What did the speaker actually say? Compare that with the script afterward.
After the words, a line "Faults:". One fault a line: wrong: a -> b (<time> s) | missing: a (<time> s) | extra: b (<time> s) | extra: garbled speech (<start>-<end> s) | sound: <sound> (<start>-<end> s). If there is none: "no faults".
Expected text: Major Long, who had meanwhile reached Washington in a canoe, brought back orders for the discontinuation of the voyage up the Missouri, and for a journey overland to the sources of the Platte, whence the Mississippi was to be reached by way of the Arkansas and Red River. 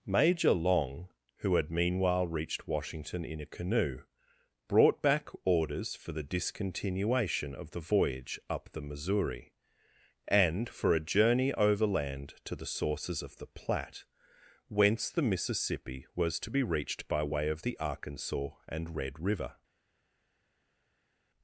Major Long, who had meanwhile reached Washington in a canoe, brought back orders for the discontinuation of the voyage up the Missouri, and for a journey overland to the sources of the Platte, whence the Mississippi was to be reached by way of the Arkansas and Red River.
Faults:
no faults